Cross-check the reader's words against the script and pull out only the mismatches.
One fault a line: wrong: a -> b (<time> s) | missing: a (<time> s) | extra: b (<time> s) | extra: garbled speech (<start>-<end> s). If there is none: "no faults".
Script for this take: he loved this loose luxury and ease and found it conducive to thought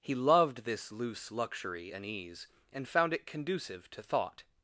no faults